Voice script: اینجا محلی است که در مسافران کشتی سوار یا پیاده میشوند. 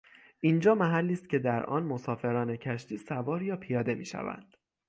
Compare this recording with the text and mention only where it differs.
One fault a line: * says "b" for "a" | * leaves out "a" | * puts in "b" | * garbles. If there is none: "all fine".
* puts in "آن"